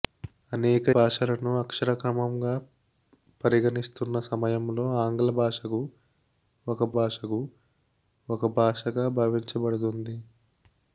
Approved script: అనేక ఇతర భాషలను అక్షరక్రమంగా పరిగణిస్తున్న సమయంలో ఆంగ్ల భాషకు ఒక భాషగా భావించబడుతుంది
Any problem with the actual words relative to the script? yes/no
yes